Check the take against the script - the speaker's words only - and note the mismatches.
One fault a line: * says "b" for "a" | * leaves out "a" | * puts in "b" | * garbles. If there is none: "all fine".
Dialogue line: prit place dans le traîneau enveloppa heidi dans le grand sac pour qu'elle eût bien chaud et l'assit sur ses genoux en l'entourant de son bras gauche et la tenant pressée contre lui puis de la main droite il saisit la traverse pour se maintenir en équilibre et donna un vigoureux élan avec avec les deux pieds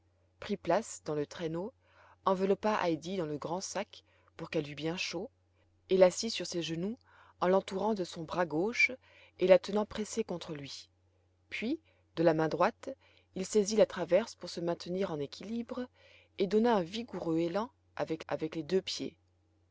all fine